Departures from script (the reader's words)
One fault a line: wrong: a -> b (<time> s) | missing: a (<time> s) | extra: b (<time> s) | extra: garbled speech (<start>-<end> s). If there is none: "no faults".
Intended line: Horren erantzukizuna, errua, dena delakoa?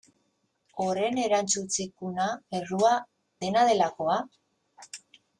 no faults